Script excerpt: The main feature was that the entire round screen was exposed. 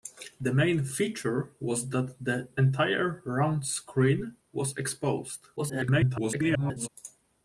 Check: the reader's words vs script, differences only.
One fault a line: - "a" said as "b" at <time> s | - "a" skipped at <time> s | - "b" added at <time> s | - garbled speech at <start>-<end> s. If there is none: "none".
- garbled speech at 5.6-6.9 s